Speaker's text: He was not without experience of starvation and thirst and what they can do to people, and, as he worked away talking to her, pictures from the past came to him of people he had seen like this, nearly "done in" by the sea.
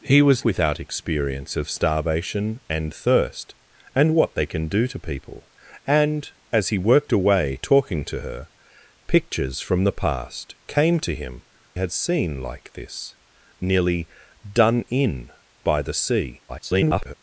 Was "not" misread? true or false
true